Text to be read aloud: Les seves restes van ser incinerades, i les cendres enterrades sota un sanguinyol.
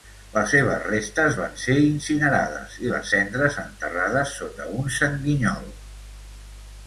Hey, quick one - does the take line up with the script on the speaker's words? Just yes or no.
yes